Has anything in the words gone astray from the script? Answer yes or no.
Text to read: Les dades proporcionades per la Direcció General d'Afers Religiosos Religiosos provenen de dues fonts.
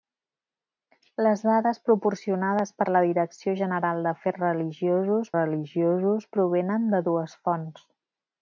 no